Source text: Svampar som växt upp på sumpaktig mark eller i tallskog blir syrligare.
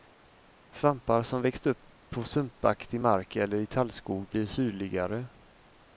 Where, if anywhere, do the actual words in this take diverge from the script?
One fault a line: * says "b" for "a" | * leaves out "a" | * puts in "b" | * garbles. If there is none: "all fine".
all fine